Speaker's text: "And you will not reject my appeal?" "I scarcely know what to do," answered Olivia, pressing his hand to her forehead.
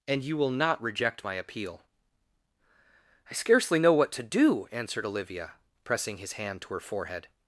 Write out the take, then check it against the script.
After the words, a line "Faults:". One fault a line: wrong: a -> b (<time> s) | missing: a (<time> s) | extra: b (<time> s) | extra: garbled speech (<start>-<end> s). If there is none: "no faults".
"And you will not reject my appeal?" "I scarcely know what to do," answered Olivia, pressing his hand to her forehead.
Faults:
no faults